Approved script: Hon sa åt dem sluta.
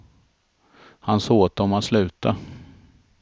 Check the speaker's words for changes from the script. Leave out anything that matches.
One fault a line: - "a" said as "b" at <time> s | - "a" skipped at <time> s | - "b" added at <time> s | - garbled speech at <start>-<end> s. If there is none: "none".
- "Hon" said as "Han" at 1.0 s
- "att" added at 1.7 s